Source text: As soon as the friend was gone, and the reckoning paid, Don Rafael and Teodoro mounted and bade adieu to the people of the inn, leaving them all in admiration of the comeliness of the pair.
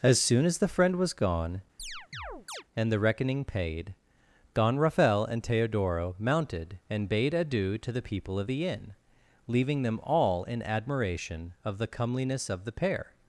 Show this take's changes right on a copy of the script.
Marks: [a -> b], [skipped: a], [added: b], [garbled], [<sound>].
As soon as the friend was gone, [chirp] and the reckoning paid, Don Rafael and Teodoro mounted and bade adieu to the people of the inn, leaving them all in admiration of the comeliness of the pair.